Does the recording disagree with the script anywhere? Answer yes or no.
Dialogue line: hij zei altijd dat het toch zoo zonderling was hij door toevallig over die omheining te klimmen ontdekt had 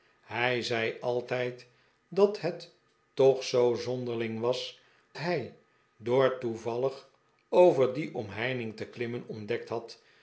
no